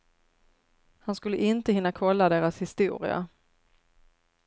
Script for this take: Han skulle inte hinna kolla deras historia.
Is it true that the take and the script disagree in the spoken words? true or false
false